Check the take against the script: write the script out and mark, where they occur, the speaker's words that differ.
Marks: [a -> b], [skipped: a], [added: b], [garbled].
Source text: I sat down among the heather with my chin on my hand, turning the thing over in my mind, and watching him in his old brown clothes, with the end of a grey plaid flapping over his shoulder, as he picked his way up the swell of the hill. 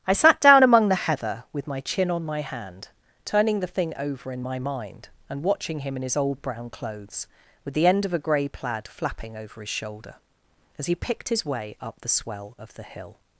I sat down among the heather with my chin on my hand, turning the thing over in my mind, and watching him in his old brown clothes, with the end of a grey plaid flapping over his shoulder, as he picked his way up the swell of the hill.